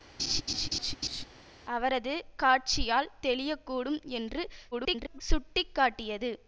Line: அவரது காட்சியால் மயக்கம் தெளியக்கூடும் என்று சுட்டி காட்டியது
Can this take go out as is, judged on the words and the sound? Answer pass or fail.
fail